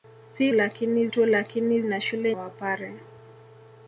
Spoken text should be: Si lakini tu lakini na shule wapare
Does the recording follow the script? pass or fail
pass